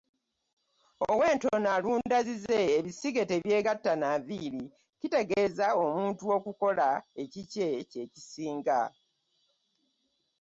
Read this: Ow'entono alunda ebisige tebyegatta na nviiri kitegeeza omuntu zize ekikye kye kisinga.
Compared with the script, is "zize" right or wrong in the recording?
wrong